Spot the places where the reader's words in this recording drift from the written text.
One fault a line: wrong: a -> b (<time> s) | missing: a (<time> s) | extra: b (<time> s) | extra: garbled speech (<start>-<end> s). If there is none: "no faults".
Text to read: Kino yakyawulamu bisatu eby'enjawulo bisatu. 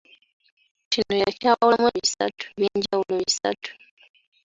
no faults